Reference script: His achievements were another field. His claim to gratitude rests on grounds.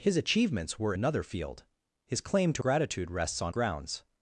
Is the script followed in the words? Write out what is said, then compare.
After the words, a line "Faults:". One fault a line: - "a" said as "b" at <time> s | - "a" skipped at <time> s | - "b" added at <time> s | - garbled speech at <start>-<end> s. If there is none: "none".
His achievements were another field. His claim to gratitude rests on grounds.
Faults:
none